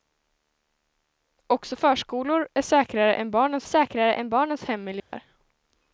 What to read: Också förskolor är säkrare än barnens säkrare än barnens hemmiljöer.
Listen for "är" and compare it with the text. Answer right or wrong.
right